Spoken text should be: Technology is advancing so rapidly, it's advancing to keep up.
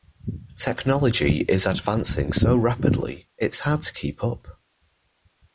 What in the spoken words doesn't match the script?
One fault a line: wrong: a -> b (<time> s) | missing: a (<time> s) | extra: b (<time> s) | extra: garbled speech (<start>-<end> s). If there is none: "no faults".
wrong: advancing -> hard (3.6 s)